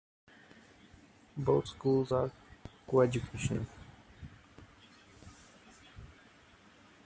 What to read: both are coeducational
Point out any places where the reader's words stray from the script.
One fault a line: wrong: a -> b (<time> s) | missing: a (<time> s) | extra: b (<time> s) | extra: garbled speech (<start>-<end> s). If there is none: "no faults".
extra: schools (1.7 s)